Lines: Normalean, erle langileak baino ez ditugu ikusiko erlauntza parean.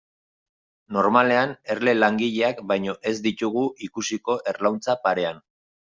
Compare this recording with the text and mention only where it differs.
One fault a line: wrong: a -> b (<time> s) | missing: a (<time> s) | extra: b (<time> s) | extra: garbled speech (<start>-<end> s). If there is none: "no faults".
no faults